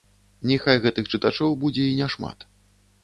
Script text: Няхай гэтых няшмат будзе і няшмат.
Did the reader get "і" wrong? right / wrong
right